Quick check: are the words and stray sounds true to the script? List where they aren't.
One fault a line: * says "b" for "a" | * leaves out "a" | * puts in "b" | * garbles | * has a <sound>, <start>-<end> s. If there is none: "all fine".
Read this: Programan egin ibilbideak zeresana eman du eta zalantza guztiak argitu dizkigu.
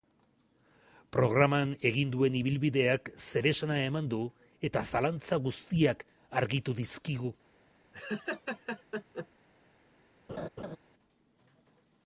* puts in "duen"
* has a laugh, 7.9-9.3 s
* has a laugh, 10.3-10.8 s